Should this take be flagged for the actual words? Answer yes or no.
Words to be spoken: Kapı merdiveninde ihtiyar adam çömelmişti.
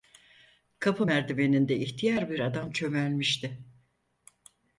yes